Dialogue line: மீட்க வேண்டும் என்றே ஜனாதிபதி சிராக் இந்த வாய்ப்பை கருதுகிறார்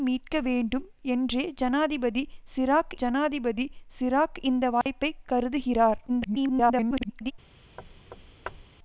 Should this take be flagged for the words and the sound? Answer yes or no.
yes